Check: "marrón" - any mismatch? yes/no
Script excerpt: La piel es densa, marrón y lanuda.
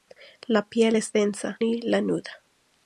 yes